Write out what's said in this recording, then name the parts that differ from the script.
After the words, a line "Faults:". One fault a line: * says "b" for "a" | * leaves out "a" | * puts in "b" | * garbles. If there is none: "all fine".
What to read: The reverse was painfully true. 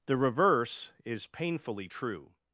The reverse is painfully true.
Faults:
* says "is" for "was"